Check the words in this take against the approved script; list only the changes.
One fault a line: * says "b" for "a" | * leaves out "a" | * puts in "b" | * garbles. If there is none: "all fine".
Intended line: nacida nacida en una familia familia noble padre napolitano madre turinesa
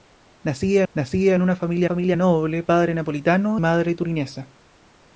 all fine